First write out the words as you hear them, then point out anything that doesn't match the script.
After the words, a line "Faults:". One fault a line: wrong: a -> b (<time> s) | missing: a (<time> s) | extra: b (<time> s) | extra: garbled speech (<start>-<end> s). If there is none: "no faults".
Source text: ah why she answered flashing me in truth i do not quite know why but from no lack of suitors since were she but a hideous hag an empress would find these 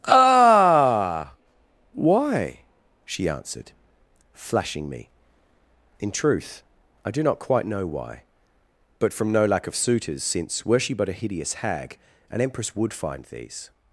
ah why she answered flashing me in truth i do not quite know why but from no lack of suitors since were she but a hideous hag an empress would find these
Faults:
no faults